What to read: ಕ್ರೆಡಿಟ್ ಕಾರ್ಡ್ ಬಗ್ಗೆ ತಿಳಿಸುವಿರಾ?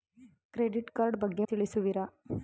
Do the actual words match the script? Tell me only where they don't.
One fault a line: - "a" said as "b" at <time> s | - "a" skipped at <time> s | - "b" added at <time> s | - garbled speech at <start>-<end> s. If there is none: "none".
none